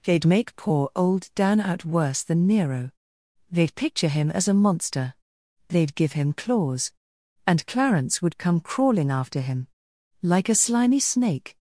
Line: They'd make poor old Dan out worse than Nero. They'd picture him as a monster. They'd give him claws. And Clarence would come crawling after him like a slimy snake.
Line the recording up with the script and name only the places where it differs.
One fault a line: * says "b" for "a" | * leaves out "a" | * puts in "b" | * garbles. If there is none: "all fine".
all fine